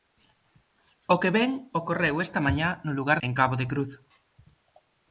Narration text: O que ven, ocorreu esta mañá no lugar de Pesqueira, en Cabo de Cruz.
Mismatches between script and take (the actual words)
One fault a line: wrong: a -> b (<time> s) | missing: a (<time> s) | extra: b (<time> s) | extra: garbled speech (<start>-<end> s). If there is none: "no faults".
missing: de Pesqueira (3.2 s)